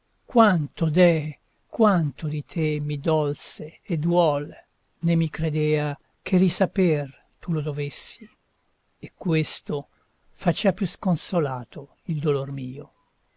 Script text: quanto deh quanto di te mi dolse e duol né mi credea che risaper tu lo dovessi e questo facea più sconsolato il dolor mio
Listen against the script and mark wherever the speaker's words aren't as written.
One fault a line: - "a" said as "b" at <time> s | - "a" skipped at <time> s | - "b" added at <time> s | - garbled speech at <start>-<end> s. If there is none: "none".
none